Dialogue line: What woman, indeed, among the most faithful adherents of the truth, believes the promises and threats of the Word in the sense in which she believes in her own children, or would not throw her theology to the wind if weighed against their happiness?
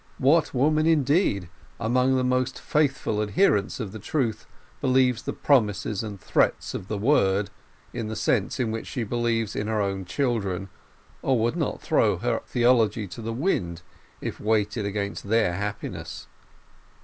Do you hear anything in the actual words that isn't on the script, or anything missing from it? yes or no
no